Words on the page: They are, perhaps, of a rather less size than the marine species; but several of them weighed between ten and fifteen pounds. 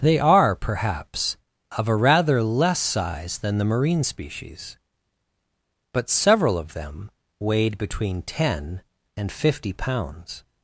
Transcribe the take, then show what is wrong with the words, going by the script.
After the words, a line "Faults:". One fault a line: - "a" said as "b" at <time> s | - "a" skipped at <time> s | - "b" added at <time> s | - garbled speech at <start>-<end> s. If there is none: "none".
They are, perhaps, of a rather less size than the marine species; but several of them weighed between ten and fifty pounds.
Faults:
- "fifteen" said as "fifty" at 9.3 s